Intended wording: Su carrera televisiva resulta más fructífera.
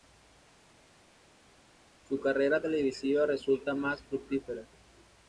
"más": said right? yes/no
yes